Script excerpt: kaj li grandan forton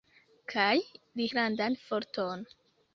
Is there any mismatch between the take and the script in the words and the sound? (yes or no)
no